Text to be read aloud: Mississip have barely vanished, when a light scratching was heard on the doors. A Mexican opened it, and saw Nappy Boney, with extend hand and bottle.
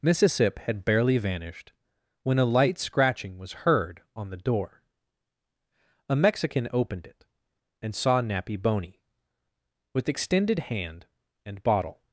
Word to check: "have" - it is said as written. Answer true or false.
false